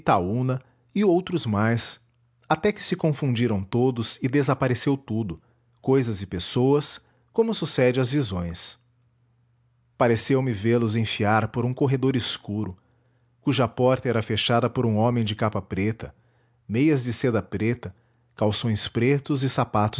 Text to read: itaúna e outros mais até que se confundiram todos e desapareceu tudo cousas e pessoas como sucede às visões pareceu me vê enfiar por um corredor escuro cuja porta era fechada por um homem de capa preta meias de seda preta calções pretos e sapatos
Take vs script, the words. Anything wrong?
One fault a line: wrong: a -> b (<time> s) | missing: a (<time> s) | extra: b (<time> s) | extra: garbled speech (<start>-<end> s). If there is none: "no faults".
extra: los (10.8 s)